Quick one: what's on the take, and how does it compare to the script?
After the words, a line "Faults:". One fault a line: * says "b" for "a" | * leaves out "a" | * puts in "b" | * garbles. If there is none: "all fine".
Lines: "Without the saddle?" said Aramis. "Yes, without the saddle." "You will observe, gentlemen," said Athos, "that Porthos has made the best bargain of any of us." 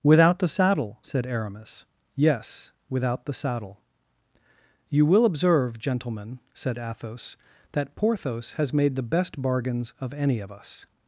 "Without the saddle?" said Aramis. "Yes, without the saddle." "You will observe, gentlemen," said Athos, "that Porthos has made the best bargains of any of us."
Faults:
* says "bargains" for "bargain"